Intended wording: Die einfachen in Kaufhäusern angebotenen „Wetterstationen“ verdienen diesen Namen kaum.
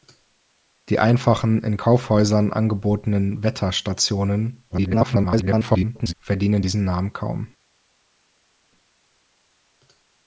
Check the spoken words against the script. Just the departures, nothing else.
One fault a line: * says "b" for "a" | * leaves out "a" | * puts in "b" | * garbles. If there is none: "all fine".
* garbles